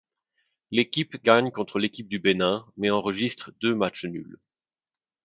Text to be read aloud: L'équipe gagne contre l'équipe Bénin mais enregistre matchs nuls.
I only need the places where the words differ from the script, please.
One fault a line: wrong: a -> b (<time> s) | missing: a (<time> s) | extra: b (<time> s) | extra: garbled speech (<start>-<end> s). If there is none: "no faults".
extra: du (2.1 s)
extra: deux (3.6 s)